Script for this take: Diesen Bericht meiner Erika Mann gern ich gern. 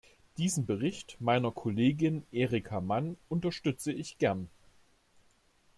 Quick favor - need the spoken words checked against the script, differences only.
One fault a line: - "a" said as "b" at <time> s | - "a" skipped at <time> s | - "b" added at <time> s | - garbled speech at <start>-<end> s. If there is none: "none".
- "Kollegin" added at 1.5 s
- "gern" said as "unterstütze" at 3.3 s